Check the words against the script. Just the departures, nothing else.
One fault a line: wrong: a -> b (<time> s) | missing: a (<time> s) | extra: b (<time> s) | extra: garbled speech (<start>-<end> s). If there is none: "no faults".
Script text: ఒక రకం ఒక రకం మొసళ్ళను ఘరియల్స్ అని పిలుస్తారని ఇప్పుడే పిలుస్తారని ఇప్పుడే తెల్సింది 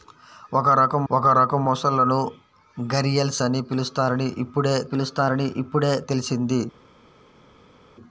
no faults